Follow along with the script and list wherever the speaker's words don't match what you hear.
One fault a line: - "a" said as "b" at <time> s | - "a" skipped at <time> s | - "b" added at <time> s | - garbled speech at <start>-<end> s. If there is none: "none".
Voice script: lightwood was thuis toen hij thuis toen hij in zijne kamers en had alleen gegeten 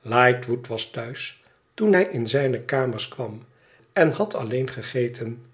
- "thuis toen hij" skipped at 2.0 s
- "kwam" added at 3.1 s